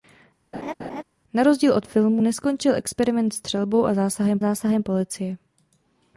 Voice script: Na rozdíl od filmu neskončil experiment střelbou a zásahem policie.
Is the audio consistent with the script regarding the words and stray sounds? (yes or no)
no